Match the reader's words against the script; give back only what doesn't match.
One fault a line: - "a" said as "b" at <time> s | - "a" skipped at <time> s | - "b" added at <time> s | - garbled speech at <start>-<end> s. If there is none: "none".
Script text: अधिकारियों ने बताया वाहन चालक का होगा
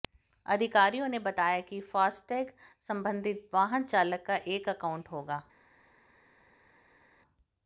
- "कि फास्टैग संबंधित" added at 1.6 s
- "एक अकाउंट" added at 4.5 s